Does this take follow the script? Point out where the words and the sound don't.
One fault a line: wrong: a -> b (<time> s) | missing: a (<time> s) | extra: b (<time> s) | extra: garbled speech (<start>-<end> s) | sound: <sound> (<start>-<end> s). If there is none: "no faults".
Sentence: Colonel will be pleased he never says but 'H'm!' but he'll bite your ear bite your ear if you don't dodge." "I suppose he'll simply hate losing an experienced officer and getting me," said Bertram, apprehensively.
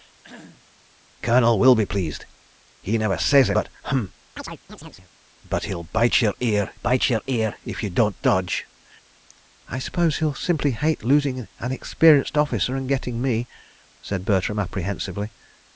sound: cough (0.2-0.7 s)
sound: chirp (4.4-5.1 s)